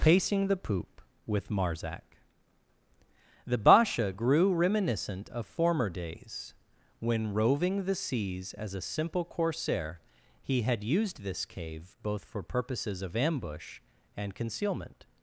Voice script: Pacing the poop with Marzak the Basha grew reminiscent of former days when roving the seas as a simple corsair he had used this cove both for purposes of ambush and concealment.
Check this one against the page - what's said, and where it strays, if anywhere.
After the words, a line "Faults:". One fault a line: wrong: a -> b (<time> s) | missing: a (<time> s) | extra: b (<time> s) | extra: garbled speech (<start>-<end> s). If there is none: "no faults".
Pacing the poop with Marzak the Basha grew reminiscent of former days when roving the seas as a simple corsair he had used this cave both for purposes of ambush and concealment.
Faults:
wrong: cove -> cave (11.5 s)